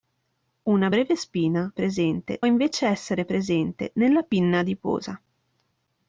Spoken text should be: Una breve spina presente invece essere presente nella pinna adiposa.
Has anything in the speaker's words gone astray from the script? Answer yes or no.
no